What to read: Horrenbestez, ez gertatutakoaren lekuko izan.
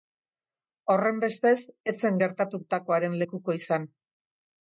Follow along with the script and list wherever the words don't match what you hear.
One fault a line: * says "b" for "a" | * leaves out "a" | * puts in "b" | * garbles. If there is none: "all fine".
* puts in "zen"